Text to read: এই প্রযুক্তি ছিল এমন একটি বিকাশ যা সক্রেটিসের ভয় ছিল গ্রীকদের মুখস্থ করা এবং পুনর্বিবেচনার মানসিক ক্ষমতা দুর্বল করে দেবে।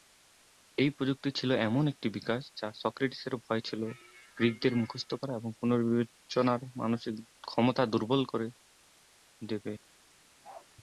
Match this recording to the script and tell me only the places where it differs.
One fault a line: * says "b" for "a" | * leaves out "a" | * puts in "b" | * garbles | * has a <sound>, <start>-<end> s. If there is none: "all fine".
* has a bark, 10.4-10.7 s